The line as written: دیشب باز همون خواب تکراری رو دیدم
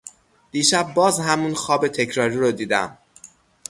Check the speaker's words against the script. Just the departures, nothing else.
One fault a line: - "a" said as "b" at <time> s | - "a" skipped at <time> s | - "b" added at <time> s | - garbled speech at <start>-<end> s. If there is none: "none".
none